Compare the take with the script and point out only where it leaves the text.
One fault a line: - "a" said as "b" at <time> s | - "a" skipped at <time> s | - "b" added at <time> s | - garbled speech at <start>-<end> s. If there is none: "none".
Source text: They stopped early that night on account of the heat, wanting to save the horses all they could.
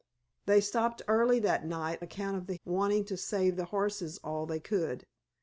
- "on" skipped at 2.0 s
- "heat" skipped at 2.5 s